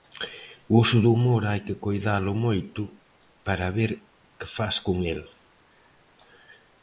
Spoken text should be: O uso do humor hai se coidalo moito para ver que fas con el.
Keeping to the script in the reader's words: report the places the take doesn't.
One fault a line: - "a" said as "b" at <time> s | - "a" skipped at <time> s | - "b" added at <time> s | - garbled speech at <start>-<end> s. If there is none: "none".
- "se" said as "que" at 1.7 s